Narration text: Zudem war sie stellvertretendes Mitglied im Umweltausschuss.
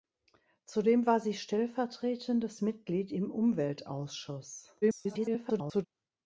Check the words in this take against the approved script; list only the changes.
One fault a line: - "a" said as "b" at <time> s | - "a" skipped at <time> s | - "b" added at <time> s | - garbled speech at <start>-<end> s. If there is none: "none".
- garbled speech at 4.8-5.9 s